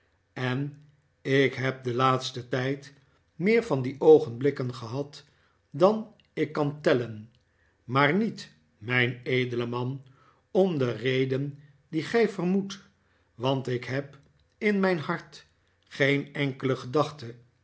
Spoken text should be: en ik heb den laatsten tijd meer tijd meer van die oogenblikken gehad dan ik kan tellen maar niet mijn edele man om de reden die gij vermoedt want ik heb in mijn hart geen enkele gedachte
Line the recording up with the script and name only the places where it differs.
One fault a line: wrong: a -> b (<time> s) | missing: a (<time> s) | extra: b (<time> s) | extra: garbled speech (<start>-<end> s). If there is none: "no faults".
missing: tijd meer (3.6 s)